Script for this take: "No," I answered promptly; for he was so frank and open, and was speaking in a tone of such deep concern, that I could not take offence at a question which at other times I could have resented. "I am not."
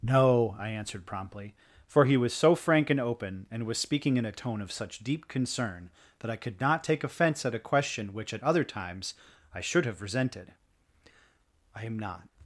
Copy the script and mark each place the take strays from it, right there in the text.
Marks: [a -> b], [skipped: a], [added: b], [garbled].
"No," I answered promptly; for he was so frank and open, and was speaking in a tone of such deep concern, that I could not take offence at a question which at other times I [could -> should] have resented. "I am not."